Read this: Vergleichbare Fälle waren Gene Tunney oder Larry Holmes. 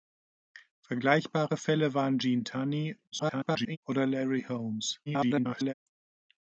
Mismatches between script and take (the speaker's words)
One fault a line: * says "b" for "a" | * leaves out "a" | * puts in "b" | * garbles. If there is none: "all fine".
* garbles
* garbles